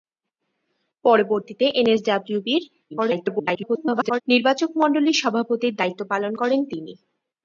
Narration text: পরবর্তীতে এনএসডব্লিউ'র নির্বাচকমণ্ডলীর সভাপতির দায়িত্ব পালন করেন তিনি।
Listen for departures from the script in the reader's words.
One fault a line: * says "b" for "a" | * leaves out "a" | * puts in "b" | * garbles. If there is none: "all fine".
* garbles